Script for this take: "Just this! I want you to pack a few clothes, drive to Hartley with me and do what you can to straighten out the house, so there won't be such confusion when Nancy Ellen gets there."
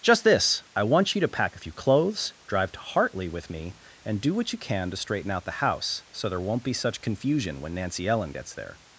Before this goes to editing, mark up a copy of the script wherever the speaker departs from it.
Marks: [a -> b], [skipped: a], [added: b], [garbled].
"Just this! I want you to pack a few clothes, drive to Hartley with me and do what you can to straighten out the house, so there won't be such confusion when Nancy Ellen gets there."